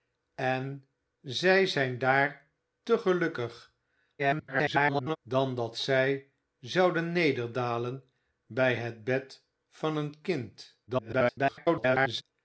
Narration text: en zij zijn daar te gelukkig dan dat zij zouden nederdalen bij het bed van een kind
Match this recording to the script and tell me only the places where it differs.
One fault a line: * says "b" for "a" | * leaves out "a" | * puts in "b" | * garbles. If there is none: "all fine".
* garbles
* garbles